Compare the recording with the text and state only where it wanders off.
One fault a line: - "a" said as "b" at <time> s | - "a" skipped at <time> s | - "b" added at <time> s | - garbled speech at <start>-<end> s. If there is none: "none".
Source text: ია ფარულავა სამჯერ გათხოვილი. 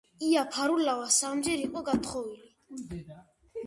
- "იყო" added at 1.7 s